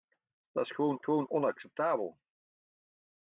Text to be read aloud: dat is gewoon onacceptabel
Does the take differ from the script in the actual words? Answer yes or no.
yes